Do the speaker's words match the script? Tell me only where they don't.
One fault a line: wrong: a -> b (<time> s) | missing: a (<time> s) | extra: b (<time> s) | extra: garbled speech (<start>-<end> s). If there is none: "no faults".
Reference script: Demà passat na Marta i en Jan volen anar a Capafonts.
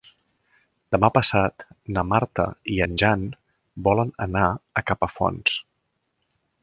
no faults